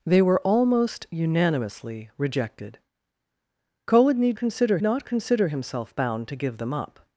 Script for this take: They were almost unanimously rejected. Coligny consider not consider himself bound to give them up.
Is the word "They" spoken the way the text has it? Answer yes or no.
yes